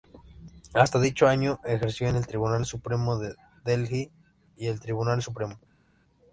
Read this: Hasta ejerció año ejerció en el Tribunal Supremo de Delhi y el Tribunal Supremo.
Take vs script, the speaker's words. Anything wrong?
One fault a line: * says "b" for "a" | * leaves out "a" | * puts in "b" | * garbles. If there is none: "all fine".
* says "dicho" for "ejerció"